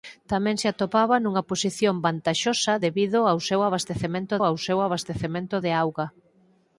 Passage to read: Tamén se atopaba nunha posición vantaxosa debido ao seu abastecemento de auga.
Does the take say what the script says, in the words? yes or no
no